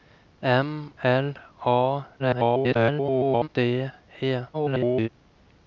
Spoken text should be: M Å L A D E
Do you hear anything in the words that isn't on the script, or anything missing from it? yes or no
yes